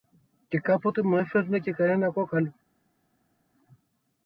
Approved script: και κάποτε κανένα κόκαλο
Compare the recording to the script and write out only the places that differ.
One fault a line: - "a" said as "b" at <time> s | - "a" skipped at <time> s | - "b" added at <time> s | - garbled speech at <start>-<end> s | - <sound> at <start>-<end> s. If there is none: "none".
- "μου έφερνε και" added at 1.0 s